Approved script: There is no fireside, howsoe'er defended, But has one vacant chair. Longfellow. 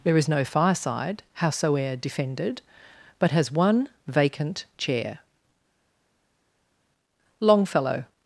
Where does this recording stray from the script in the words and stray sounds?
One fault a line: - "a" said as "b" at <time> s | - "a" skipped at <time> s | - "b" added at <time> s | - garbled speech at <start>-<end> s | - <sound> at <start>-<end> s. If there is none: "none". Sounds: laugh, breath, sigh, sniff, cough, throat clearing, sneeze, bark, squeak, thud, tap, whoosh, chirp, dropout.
none